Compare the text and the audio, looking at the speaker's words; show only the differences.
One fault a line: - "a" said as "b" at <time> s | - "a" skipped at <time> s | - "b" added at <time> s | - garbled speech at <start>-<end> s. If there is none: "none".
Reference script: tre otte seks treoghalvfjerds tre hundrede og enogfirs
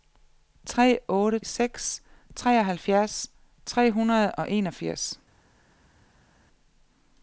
none